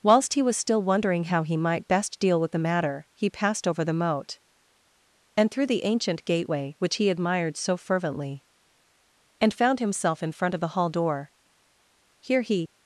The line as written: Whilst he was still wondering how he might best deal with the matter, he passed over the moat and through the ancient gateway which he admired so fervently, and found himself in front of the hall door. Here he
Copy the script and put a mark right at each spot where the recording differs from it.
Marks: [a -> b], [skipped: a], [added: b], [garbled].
Whilst he was still wondering how he might best deal with the matter, he passed over the moat and through the ancient gateway which he admired so fervently, and found himself in front of the hall door. Here he